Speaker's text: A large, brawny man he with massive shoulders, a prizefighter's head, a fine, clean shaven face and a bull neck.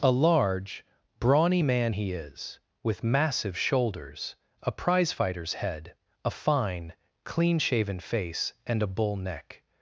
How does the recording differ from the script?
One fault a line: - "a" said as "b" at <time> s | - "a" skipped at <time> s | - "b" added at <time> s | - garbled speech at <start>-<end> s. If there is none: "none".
- "is" added at 2.1 s